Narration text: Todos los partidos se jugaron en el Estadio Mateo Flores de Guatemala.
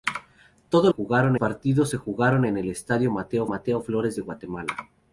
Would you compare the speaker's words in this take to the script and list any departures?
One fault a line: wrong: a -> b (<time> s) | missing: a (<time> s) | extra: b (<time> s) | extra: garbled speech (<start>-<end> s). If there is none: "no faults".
wrong: los -> jugaron (0.9 s)
extra: Mateo (3.4 s)